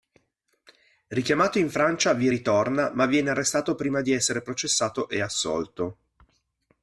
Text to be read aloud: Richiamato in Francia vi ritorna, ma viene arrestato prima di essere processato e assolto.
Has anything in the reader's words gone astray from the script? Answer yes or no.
no